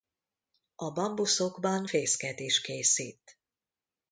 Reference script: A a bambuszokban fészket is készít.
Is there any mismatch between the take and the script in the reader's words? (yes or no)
yes